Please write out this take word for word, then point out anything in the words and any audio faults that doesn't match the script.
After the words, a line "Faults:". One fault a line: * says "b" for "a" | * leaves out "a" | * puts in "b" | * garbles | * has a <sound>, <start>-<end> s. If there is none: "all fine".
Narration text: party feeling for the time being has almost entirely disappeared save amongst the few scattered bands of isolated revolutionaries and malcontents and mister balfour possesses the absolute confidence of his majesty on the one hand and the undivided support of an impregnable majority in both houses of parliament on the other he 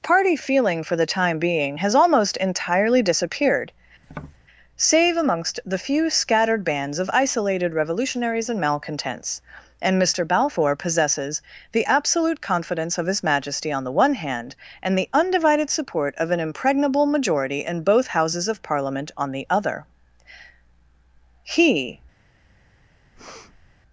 party feeling for the time being has almost entirely disappeared save amongst the few scattered bands of isolated revolutionaries and malcontents and mister balfour possesses the absolute confidence of his majesty on the one hand and the undivided support of an impregnable majority in both houses of parliament on the other he
Faults:
* has a tap, 4.0-4.4 s
* has a breath, 23.1-23.7 s